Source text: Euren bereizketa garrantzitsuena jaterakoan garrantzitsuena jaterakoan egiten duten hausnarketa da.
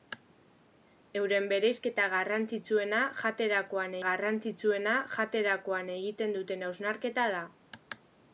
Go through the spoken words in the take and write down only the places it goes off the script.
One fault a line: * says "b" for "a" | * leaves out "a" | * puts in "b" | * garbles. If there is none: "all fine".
all fine